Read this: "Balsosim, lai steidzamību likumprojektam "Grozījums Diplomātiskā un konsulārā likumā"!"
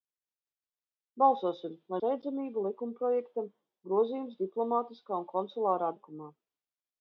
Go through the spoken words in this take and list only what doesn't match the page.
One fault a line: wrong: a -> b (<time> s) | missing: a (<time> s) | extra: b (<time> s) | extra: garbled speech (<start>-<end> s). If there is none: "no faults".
no faults